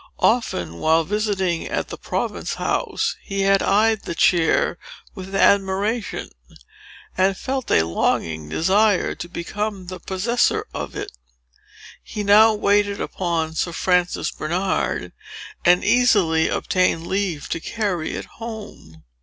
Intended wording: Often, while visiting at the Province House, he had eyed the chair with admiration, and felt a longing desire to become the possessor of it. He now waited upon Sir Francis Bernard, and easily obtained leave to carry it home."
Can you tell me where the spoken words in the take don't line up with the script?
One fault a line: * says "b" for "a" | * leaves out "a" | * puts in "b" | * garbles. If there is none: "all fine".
all fine